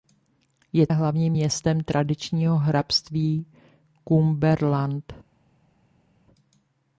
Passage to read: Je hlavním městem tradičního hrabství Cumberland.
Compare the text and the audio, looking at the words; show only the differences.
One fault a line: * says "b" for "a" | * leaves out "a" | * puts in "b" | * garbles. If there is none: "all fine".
all fine